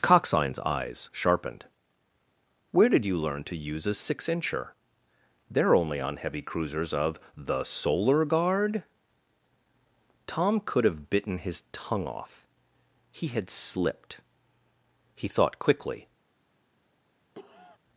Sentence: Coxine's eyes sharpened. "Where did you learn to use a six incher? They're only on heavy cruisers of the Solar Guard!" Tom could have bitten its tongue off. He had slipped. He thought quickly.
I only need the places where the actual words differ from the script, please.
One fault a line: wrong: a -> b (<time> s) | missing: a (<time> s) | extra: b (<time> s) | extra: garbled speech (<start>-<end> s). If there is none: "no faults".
wrong: its -> his (11.4 s)